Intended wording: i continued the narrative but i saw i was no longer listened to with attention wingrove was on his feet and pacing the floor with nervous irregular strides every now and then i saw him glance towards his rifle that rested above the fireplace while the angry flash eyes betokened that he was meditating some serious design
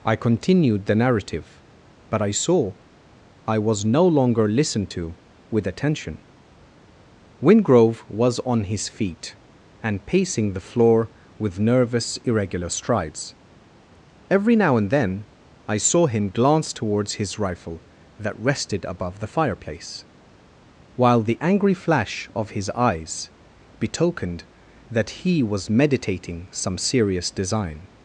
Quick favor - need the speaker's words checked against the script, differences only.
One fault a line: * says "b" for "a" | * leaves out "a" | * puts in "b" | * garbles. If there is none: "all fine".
* puts in "of his"